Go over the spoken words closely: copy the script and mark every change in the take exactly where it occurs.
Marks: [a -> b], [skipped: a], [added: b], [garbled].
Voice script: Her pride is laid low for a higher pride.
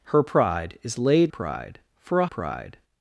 Her pride is laid [low -> pride] for a [skipped: higher] pride.